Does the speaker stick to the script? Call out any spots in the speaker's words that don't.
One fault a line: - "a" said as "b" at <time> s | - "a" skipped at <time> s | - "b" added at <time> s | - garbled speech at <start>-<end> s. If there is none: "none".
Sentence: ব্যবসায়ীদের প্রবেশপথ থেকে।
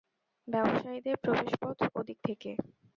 - "ওদিক" added at 1.9 s